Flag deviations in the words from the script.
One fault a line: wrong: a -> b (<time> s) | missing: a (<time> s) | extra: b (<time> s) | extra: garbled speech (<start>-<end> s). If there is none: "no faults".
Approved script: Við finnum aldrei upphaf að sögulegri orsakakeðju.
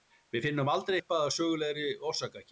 no faults